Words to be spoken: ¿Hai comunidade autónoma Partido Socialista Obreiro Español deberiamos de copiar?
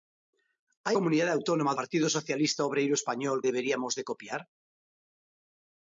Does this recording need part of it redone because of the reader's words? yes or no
no